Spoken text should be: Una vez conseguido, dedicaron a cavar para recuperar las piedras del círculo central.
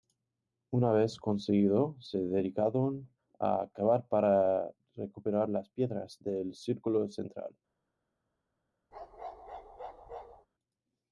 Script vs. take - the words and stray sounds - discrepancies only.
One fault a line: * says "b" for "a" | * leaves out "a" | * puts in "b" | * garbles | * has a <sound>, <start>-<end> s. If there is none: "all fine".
* puts in "se"
* has a bark, 8.9-10.5 s